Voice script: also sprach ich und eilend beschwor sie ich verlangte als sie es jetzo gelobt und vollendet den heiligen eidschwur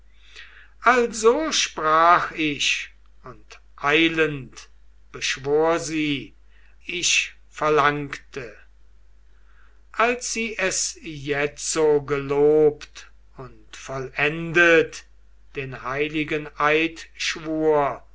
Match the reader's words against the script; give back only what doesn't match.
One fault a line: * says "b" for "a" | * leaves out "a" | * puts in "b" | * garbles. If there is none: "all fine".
all fine